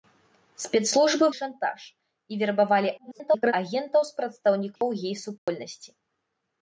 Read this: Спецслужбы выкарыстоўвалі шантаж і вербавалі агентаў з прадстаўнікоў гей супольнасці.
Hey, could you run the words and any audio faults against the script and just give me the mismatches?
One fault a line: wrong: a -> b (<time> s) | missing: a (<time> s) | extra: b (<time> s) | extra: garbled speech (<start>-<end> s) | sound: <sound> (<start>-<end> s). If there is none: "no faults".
missing: выкарыстоўвалі (1.2 s)
extra: garbled speech (3.0-3.5 s)
sound: dropout (4.8-4.8 s)
sound: dropout (5.4-5.5 s)